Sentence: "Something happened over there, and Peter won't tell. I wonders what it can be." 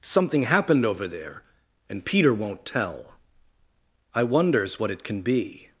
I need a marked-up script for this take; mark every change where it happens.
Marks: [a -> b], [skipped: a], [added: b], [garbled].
"Something happened over there, and Peter won't tell. I wonders what it can be."